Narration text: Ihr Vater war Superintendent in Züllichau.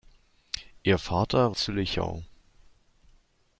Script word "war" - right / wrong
wrong